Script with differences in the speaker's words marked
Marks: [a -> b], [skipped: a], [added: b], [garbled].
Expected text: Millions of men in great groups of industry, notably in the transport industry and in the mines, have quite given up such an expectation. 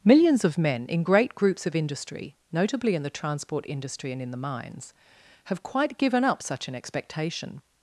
Millions of men in great groups of industry, notably in the transport industry and in the mines, have quite given up such an expectation.